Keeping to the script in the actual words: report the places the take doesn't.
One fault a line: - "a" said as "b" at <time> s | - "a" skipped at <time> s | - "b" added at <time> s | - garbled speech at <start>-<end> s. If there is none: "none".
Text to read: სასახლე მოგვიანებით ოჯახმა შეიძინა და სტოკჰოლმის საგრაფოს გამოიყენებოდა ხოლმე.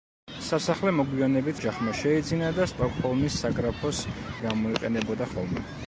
none